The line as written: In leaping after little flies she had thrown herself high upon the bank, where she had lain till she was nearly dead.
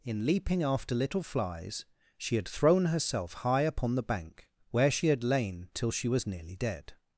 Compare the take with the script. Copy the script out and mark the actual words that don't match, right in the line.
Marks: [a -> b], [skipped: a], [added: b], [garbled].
In leaping after little flies she had thrown herself high upon the bank, where she had lain till she was nearly dead.